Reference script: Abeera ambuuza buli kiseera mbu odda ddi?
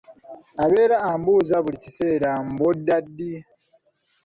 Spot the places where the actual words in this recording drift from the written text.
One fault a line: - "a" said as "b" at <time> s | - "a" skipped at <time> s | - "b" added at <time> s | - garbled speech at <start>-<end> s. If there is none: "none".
none